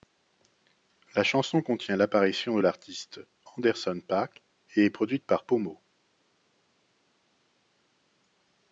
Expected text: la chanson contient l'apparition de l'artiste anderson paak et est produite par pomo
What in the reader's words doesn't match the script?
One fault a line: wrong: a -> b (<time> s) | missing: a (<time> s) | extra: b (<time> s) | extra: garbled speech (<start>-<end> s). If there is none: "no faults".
no faults